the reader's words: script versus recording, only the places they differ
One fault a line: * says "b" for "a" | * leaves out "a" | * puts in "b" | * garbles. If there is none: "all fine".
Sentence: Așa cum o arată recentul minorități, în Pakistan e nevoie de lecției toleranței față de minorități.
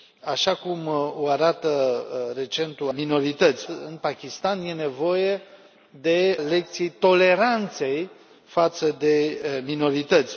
all fine